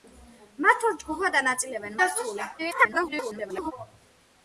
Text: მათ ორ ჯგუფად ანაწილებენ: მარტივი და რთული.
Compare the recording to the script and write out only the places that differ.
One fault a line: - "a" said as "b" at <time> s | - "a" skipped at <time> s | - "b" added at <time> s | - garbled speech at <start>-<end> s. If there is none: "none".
- "მარტივი" skipped at 2.0 s
- garbled speech at 2.6-3.7 s